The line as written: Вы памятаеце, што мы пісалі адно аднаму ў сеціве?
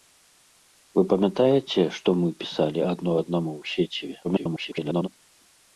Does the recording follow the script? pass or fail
fail